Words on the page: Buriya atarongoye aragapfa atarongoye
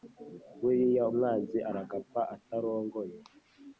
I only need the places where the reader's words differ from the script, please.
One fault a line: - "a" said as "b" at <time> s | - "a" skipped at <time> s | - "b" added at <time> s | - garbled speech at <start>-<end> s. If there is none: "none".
- "atarongoye" said as "umwanzi" at 1.1 s